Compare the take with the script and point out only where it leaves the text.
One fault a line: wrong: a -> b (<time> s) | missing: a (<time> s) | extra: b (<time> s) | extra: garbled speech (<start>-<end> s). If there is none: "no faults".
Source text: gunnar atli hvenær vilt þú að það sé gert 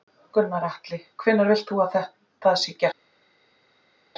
no faults